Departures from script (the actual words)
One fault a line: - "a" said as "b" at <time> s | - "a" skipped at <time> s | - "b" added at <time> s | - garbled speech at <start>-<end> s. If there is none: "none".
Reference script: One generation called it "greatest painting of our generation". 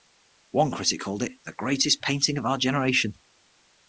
- "generation" said as "critic" at 0.7 s
- "the" added at 1.4 s